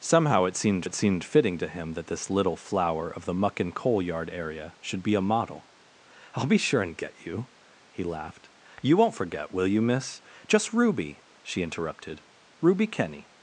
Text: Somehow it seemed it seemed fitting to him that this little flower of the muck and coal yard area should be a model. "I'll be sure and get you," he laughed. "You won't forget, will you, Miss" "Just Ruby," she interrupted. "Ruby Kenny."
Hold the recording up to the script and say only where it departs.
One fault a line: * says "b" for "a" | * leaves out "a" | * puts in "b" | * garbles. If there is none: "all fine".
all fine